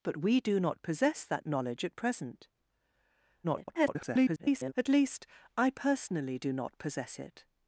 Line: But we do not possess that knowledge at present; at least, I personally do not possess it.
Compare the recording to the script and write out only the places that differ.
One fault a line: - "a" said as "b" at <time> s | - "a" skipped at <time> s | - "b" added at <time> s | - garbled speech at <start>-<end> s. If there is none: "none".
- garbled speech at 3.4-4.7 s